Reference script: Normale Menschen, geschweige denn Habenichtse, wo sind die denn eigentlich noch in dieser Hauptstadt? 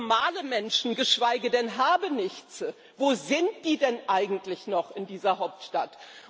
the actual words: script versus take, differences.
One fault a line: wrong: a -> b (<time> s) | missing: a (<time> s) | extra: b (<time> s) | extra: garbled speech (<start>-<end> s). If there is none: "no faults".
no faults